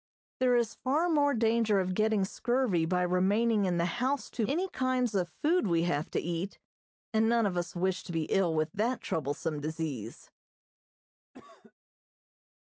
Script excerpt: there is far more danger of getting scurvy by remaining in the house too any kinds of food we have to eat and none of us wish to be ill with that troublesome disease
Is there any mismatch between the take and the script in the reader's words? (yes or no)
no